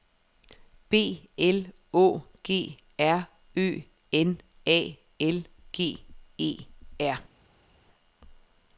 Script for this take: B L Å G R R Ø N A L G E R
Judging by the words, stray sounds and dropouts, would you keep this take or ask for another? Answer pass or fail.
fail